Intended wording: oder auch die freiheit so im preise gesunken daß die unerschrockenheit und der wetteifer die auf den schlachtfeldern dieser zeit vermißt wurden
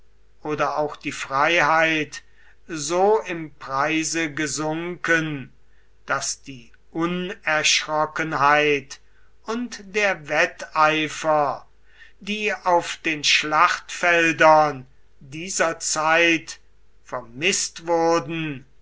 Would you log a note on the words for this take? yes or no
no